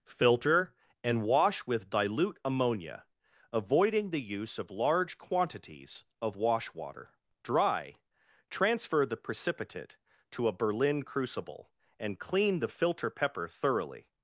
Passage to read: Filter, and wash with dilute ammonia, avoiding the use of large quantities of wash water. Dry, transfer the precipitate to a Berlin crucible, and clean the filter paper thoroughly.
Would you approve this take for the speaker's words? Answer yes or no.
no